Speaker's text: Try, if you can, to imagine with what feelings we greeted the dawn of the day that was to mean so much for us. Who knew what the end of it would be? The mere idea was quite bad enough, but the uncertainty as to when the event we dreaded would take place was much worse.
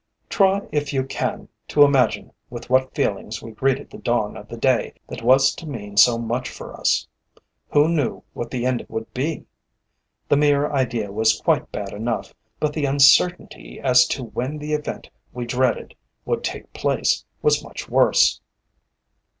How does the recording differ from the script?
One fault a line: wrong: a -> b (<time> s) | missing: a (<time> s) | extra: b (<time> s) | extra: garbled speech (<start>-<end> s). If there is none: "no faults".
missing: it (8.9 s)